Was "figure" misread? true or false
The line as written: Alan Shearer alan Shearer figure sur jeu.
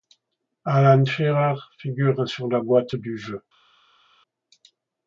true